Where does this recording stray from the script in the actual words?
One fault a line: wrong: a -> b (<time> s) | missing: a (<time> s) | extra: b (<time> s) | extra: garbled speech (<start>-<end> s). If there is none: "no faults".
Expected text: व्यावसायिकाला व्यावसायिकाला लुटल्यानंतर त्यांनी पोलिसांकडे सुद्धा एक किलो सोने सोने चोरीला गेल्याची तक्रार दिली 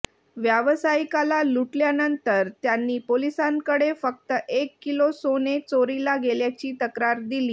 missing: व्यावसायिकाला (1.4 s)
wrong: सुद्धा -> फक्त (4.0 s)
missing: सोने (5.6 s)